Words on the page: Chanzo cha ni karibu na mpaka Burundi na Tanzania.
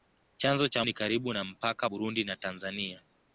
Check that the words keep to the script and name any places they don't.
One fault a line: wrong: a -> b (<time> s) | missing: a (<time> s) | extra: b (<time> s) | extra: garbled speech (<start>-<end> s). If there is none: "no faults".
no faults